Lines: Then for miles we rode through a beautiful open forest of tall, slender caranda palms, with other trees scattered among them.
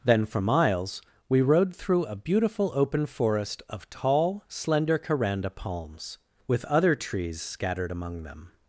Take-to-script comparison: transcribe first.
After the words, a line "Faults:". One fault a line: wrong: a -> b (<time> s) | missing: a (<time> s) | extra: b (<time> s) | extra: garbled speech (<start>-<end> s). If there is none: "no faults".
Then for miles we rode through a beautiful open forest of tall, slender caranda palms, with other trees scattered among them.
Faults:
no faults